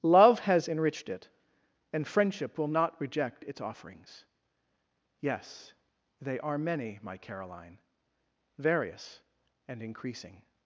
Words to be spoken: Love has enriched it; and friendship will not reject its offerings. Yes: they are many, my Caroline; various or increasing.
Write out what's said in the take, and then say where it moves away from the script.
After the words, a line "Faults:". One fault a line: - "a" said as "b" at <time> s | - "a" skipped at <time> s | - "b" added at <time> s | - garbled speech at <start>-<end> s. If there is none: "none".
Love has enriched it; and friendship will not reject its offerings. Yes: they are many, my Caroline; various and increasing.
Faults:
- "or" said as "and" at 9.7 s